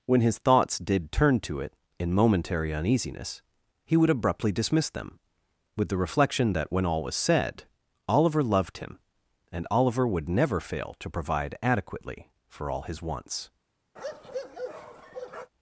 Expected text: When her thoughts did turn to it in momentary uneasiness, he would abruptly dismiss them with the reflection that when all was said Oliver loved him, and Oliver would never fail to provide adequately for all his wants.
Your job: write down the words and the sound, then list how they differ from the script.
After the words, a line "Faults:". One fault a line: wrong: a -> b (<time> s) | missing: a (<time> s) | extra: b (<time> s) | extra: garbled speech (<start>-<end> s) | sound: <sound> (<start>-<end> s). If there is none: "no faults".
When his thoughts did turn to it in momentary uneasiness, he would abruptly dismiss them with the reflection that when all was said Oliver loved him, and Oliver would never fail to provide adequately for all his wants.
Faults:
wrong: her -> his (0.2 s)
sound: bark (14.0-15.5 s)